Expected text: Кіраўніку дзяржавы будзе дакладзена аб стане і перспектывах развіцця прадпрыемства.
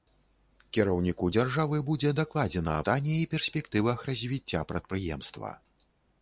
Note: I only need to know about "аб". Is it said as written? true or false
false